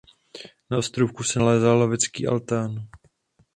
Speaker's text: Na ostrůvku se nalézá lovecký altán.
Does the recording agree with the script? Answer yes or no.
yes